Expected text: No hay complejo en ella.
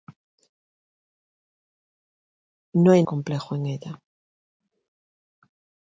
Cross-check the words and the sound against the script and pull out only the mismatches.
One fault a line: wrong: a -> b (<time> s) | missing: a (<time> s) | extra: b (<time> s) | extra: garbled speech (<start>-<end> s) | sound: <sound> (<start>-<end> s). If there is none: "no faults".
no faults